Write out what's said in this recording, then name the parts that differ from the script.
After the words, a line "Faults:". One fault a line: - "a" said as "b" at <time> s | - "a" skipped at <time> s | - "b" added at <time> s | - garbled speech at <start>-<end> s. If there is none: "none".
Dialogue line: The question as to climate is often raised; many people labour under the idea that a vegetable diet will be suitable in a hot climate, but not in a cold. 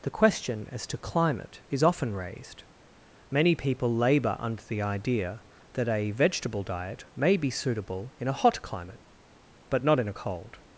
The question as to climate is often raised; many people labour under the idea that a vegetable diet may be suitable in a hot climate, but not in a cold.
Faults:
- "will" said as "may" at 7.2 s